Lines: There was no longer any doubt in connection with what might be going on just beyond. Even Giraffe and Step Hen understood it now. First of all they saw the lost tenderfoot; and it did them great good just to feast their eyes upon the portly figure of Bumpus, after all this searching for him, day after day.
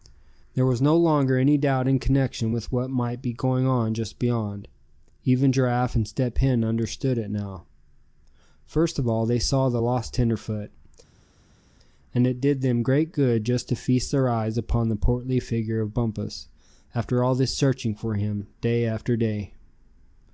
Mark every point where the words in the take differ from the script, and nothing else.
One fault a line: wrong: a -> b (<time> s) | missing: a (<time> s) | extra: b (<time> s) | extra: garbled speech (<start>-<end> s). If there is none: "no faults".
no faults